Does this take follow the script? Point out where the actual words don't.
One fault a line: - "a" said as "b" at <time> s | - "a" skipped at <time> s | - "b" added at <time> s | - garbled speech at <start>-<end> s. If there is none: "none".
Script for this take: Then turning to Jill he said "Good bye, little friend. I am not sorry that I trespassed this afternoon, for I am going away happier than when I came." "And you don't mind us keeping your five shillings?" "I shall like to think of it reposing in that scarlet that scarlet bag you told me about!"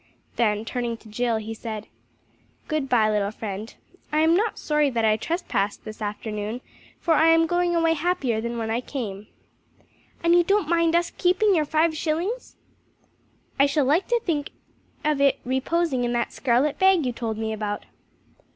- "that scarlet" skipped at 16.8 s